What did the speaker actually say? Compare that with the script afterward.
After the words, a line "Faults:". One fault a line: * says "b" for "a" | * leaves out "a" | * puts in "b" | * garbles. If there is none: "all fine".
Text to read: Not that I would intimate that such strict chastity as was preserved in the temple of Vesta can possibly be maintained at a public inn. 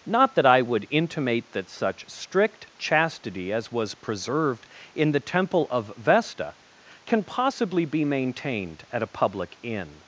Not that I would intimate that such strict chastity as was preserved in the temple of Vesta can possibly be maintained at a public inn.
Faults:
all fine